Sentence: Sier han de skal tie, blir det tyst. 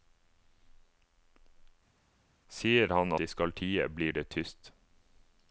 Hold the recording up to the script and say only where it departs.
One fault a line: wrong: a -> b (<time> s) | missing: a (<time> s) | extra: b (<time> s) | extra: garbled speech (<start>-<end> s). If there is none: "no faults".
no faults